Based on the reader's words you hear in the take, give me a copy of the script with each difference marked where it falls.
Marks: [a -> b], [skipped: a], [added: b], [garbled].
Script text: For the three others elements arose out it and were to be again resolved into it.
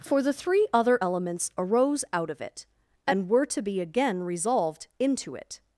For the three [others -> other] elements arose out [added: of] it and were to be again resolved into it.